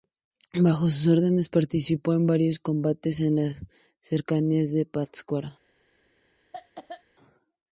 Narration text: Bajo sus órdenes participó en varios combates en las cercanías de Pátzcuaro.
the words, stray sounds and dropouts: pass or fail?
fail